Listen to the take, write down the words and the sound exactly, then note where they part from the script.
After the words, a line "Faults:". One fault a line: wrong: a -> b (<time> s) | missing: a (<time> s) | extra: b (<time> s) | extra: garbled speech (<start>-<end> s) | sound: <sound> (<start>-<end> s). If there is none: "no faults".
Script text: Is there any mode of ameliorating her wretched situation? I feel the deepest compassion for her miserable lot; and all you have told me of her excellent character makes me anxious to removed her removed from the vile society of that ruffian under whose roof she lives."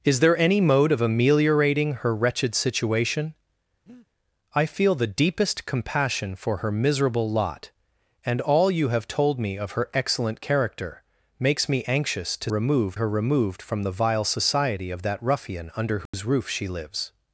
Is there any mode of ameliorating her wretched situation? I feel the deepest compassion for her miserable lot; and all you have told me of her excellent character makes me anxious to removed her removed from the vile society of that ruffian under whose roof she lives."
Faults:
sound: breath (3.9-4.1 s)
sound: dropout (16.1-16.1 s)